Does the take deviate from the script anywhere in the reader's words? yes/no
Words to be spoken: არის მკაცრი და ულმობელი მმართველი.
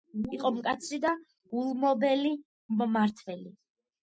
yes